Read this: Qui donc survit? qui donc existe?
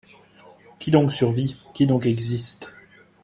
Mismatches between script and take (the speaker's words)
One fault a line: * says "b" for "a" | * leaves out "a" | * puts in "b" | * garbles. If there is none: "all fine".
all fine